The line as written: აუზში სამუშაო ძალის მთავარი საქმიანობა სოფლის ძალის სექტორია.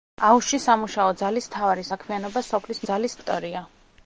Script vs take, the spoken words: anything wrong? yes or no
no